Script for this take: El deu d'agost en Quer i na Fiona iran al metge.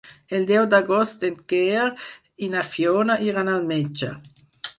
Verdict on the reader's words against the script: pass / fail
pass